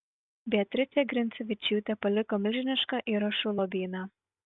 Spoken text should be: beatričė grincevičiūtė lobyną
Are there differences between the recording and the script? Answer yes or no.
yes